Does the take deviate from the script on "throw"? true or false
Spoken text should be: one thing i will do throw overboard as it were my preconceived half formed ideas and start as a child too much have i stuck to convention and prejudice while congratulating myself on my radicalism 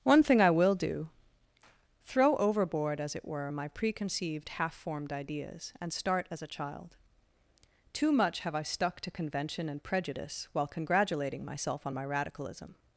false